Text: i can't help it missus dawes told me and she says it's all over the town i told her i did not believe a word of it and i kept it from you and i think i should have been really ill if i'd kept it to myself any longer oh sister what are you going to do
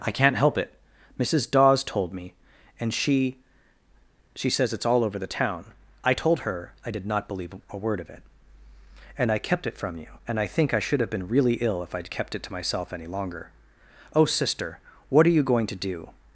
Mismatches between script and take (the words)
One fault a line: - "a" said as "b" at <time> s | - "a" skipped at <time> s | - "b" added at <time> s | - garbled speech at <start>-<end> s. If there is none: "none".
- "she" added at 4.3 s